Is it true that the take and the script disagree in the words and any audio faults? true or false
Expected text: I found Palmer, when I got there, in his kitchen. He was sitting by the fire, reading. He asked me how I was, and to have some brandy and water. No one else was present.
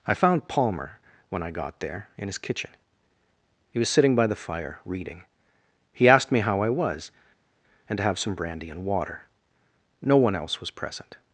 false